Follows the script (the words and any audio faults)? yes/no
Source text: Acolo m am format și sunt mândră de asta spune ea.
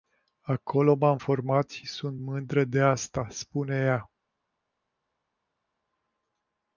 yes